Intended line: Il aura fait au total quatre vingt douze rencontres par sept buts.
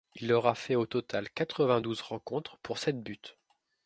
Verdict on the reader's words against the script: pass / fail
fail